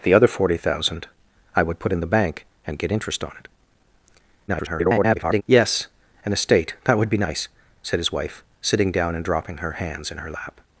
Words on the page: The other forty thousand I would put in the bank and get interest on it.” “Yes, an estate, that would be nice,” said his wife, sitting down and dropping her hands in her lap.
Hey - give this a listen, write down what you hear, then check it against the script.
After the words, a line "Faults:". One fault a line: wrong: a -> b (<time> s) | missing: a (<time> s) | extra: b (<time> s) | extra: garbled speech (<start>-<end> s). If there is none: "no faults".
The other forty thousand I would put in the bank and get interest on it.” [garbled] “Yes, an estate, that would be nice,” said his wife, sitting down and dropping her hands in her lap.
Faults:
extra: garbled speech (4.5-5.4 s)